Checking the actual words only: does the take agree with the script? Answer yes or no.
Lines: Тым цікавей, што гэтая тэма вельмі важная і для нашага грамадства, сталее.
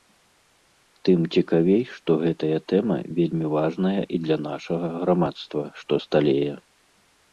no